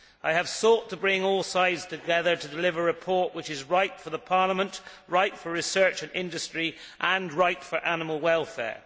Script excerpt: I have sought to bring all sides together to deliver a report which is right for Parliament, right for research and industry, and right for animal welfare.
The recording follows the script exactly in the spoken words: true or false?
true